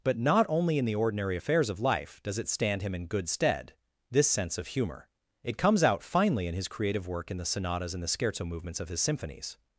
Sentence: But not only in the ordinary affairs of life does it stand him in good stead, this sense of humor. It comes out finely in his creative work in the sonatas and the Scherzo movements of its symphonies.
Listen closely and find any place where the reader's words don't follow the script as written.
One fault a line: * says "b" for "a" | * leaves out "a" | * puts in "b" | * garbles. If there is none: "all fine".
* says "his" for "its"